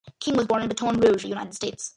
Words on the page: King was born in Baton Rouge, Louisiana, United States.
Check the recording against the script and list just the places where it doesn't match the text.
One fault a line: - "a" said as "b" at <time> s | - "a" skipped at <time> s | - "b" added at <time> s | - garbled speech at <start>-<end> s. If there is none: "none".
- "Louisiana" skipped at 1.3 s